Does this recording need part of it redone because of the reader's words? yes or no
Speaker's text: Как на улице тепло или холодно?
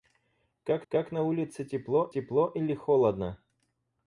yes